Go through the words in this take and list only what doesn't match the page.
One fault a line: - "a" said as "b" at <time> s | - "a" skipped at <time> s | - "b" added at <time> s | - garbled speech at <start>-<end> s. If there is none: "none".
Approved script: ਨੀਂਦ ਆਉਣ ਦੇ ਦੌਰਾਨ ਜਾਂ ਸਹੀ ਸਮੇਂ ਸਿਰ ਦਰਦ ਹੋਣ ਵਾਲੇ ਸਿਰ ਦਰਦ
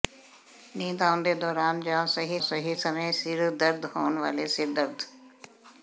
- "ਸਹੀ" added at 2.4 s